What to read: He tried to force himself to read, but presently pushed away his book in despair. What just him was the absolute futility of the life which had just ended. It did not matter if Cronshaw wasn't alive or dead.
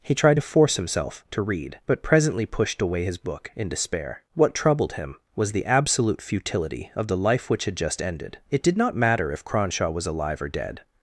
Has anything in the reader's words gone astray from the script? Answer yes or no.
yes